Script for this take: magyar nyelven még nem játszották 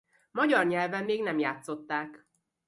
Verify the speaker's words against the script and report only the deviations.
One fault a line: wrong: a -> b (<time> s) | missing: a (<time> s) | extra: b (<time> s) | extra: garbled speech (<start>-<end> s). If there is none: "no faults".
no faults